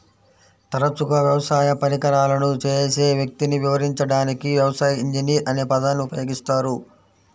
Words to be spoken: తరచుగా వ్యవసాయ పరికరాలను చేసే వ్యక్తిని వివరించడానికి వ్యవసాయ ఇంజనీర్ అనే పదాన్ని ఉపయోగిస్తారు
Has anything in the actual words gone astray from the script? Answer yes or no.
no